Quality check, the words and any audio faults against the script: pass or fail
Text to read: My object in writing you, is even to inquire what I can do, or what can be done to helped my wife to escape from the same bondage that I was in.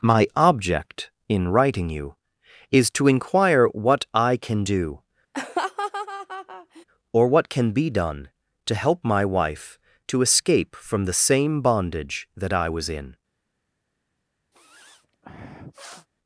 fail